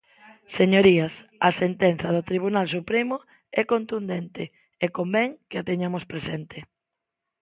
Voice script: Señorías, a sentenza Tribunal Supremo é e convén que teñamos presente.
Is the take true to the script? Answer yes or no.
no